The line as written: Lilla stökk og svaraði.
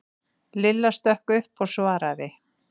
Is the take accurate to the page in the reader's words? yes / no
no